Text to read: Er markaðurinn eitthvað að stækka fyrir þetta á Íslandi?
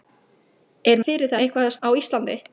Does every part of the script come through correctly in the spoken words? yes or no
no